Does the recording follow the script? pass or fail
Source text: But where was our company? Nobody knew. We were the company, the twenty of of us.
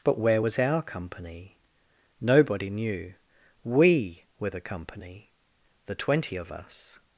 fail